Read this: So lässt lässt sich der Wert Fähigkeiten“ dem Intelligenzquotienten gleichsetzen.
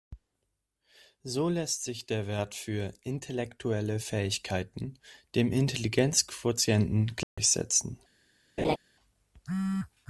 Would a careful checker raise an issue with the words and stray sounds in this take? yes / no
yes